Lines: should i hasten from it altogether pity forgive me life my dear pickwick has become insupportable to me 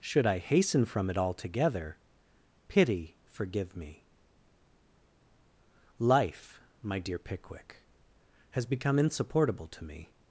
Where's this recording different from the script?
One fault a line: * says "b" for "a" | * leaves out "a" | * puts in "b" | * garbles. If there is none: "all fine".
all fine